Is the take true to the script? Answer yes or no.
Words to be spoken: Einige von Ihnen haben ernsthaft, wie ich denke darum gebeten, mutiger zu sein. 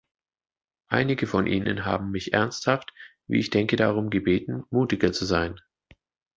no